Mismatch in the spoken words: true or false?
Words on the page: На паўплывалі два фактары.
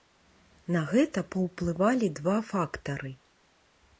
true